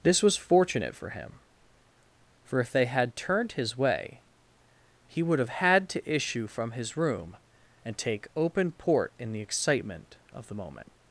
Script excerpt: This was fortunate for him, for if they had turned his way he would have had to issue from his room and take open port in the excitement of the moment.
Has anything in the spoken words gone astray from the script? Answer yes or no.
no